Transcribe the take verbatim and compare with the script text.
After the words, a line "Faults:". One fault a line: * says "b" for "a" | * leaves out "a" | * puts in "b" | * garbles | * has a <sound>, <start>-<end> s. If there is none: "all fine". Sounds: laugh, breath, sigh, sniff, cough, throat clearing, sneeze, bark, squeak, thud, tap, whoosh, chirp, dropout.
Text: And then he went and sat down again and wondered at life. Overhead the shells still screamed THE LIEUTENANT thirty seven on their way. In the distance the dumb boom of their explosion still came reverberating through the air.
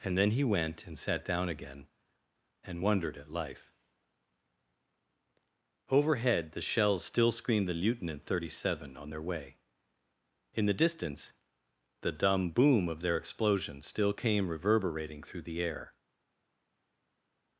And then he went and sat down again and wondered at life. Overhead the shells still screamed THE LIEUTENANT thirty seven on their way. In the distance the dumb boom of their explosion still came reverberating through the air.
Faults:
all fine